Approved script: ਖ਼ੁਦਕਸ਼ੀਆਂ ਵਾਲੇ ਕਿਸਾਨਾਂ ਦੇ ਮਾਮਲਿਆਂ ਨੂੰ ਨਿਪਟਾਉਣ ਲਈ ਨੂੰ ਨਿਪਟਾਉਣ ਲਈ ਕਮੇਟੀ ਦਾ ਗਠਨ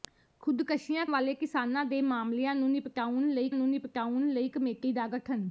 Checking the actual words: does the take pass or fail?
pass